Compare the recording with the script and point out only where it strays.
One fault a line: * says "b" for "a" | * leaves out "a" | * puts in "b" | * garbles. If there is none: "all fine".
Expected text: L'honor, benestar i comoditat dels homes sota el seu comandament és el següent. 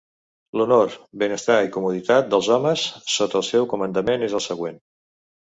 all fine